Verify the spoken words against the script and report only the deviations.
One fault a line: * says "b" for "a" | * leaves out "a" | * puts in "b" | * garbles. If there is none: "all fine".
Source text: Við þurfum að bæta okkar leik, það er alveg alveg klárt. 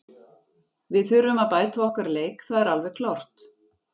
* leaves out "alveg"